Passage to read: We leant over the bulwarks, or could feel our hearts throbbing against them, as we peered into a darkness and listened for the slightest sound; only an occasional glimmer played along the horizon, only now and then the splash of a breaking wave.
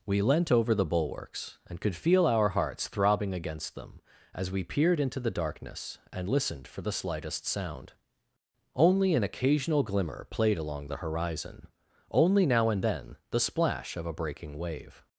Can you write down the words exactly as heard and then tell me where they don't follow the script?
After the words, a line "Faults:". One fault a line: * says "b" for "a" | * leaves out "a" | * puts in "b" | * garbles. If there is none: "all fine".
We leant over the bulwarks, and could feel our hearts throbbing against them, as we peered into the darkness and listened for the slightest sound; only an occasional glimmer played along the horizon, only now and then the splash of a breaking wave.
Faults:
* says "and" for "or"
* says "the" for "a"